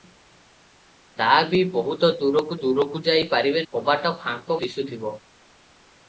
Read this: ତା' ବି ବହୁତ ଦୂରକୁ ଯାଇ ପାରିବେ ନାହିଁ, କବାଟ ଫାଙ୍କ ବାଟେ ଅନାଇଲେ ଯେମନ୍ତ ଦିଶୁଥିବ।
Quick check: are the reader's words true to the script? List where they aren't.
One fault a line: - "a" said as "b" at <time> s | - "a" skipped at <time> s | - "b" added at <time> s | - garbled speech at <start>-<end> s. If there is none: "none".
- "ଦୂରକୁ" added at 2.6 s
- "ନାହିଁ" skipped at 3.6 s
- "ବାଟେ ଅନାଇଲେ ଯେମନ୍ତ" skipped at 4.6 s